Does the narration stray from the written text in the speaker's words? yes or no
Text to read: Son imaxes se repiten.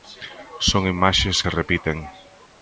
no